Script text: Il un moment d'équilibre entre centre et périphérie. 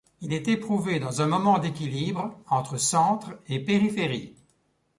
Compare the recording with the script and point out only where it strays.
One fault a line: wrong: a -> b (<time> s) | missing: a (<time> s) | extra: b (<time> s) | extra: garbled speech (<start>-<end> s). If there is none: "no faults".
extra: est éprouvé dans (0.3 s)